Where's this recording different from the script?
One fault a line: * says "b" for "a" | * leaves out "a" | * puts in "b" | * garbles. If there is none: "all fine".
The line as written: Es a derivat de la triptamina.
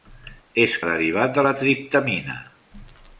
all fine